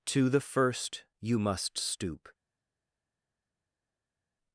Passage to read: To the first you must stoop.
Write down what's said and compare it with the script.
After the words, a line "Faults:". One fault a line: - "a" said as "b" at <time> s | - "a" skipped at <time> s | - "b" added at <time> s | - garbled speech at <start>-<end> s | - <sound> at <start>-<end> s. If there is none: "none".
To the first you must stoop.
Faults:
none